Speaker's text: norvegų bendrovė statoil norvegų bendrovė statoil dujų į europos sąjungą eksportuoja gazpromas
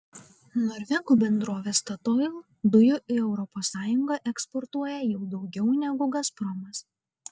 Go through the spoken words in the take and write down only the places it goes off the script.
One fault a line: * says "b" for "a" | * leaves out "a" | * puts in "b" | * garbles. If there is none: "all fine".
* leaves out "norvegų bendrovė statoil"
* puts in "jau daugiau negu"